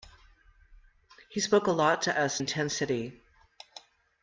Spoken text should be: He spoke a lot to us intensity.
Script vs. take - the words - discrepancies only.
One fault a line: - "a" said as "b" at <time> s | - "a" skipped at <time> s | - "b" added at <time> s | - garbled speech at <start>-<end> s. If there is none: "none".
none